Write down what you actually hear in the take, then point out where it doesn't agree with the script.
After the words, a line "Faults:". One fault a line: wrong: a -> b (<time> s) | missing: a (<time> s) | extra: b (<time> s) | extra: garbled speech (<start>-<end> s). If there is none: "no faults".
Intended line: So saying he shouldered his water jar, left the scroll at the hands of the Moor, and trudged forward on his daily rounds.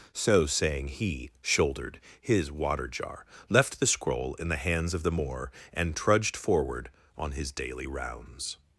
So saying he shouldered his water jar, left the scroll in the hands of the Moor, and trudged forward on his daily rounds.
Faults:
wrong: at -> in (4.3 s)